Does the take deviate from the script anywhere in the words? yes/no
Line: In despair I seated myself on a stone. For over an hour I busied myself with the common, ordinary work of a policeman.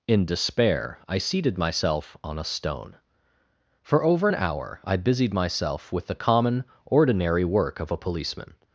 no